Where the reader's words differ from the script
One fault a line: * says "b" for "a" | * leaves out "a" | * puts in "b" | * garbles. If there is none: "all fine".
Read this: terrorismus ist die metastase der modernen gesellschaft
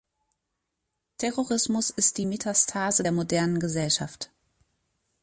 all fine